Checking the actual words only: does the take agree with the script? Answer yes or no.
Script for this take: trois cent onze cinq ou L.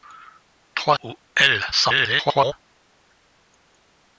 no